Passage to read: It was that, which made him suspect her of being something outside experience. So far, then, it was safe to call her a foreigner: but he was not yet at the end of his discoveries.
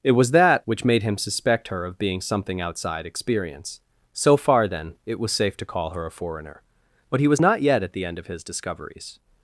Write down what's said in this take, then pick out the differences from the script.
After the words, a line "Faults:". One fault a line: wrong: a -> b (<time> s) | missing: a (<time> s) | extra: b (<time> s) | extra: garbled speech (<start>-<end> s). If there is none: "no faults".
It was that, which made him suspect her of being something outside experience. So far, then, it was safe to call her a foreigner: but he was not yet at the end of his discoveries.
Faults:
no faults